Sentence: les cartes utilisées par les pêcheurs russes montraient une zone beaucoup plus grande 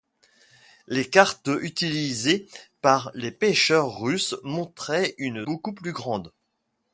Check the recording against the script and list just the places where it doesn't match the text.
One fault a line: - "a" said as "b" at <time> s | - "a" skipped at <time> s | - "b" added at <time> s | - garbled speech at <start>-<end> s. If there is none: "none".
- "zone" skipped at 5.5 s